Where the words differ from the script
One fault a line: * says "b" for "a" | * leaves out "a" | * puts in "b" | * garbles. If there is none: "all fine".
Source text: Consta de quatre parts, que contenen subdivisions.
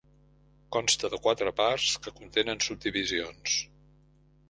all fine